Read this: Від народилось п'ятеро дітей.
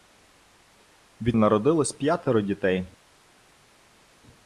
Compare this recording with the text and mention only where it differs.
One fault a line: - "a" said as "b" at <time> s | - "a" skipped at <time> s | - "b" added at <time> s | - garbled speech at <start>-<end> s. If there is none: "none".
none